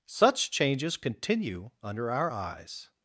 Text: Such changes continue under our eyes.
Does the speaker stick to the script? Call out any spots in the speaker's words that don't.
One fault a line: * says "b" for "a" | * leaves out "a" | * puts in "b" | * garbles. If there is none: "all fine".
all fine